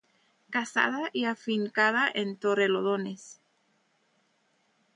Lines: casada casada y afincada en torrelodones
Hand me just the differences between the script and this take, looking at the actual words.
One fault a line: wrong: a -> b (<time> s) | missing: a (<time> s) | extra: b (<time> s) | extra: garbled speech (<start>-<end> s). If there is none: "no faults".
missing: casada (1.1 s)